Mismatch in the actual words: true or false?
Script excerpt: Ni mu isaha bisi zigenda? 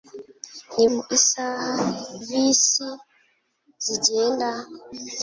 false